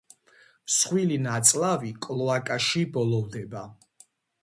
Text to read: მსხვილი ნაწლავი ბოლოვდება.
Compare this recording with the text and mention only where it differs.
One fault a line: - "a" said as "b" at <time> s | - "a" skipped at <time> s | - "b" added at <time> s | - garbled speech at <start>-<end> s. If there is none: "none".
- "კლოაკაში" added at 2.1 s